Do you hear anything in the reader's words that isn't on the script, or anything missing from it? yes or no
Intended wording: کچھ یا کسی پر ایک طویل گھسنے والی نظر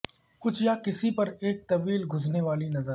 no